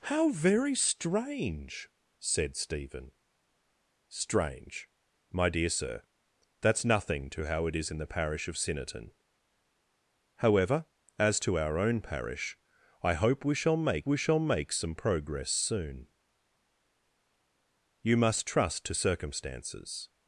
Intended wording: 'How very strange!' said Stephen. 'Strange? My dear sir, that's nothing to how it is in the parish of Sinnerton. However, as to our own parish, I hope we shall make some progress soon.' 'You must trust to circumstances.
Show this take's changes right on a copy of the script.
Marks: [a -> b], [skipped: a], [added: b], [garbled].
'How very strange!' said Stephen. 'Strange? My dear sir, that's nothing to how it is in the parish of Sinnerton. However, as to our own parish, I hope we shall make [added: we shall make] some progress soon.' 'You must trust to circumstances.